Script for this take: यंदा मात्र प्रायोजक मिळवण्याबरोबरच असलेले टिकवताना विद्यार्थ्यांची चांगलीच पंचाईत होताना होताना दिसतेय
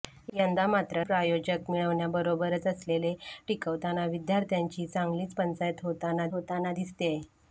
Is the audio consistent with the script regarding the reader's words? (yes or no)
yes